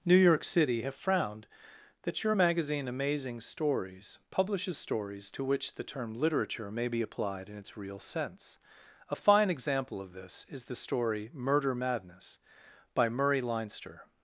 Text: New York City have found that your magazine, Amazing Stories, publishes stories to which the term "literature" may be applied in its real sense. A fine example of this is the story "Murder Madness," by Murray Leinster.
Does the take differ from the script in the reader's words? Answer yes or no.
yes